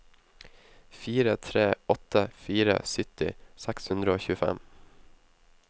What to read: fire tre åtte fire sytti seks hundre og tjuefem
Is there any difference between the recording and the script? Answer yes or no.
no